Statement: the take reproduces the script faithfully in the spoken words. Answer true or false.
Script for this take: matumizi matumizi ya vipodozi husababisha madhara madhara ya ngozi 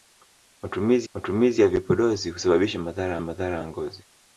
true